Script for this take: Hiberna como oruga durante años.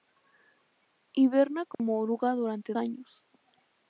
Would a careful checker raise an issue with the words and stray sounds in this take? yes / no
yes